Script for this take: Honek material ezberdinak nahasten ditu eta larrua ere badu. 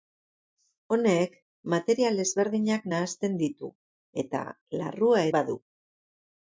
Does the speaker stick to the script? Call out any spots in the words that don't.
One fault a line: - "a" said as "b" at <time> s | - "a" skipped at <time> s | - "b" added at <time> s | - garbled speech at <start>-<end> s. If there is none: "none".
- "ere" skipped at 5.3 s